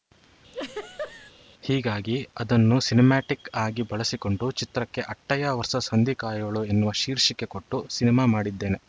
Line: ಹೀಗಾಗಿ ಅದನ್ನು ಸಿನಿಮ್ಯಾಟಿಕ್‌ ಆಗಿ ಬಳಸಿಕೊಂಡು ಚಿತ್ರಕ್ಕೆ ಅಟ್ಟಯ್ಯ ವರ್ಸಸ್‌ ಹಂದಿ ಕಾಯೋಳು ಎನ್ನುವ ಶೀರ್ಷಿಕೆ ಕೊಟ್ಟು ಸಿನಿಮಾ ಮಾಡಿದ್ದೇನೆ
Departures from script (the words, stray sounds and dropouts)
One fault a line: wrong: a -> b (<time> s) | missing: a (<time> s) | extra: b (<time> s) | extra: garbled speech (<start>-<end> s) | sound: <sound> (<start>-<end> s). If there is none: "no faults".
sound: laugh (0.5-1.3 s)